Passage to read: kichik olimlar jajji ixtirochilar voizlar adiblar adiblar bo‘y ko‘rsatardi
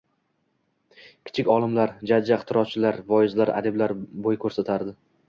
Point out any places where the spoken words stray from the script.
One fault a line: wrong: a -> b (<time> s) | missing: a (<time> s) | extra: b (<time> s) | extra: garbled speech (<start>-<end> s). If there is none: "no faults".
missing: adiblar (4.0 s)